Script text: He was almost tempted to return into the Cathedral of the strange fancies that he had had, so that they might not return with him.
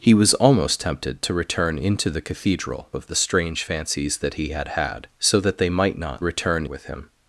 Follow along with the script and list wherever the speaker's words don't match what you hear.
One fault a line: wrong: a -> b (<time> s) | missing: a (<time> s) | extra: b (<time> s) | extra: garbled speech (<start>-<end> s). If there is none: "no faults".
no faults